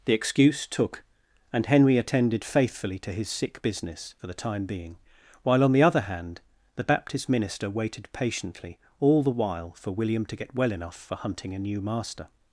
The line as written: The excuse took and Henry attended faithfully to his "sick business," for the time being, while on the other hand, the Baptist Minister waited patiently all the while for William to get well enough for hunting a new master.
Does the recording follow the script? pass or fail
pass